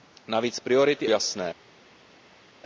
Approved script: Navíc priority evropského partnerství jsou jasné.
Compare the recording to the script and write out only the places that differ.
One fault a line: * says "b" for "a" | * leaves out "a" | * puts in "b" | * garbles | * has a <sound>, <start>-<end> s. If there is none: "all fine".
* leaves out "evropského partnerství jsou"